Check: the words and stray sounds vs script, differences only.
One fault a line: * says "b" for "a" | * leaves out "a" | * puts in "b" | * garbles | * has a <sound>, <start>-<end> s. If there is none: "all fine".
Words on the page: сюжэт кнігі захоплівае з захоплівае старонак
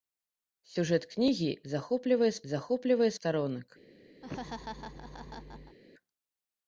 * has a laugh, 4.2-5.8 s